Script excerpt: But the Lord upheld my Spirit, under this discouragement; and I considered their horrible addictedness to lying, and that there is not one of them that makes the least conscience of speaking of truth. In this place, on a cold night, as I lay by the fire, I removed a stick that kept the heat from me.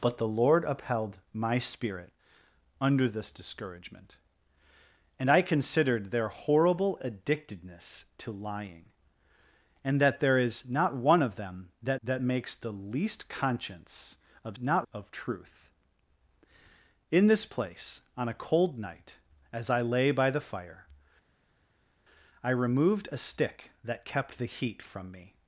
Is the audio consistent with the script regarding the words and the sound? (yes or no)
no